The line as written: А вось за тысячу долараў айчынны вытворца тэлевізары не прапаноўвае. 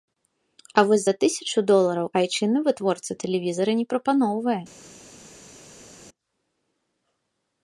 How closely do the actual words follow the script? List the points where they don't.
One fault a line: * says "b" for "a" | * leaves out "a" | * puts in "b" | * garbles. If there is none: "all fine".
all fine